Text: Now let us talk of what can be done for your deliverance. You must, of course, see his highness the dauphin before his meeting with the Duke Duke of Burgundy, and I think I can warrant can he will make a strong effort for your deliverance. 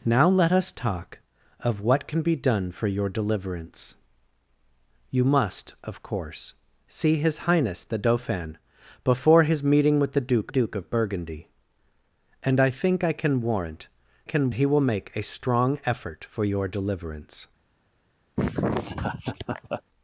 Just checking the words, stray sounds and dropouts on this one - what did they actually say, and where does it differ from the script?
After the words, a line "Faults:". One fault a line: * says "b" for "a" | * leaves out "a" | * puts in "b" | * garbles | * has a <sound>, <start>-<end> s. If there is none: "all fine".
Now let us talk of what can be done for your deliverance. You must, of course, see his highness the dauphin before his meeting with the Duke Duke of Burgundy, and I think I can warrant can he will make a strong effort for your deliverance.
Faults:
* has a laugh, 18.4-19.8 s